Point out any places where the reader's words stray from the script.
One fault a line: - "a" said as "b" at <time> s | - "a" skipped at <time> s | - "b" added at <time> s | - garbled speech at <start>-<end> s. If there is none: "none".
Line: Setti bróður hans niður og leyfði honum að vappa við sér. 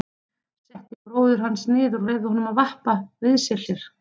none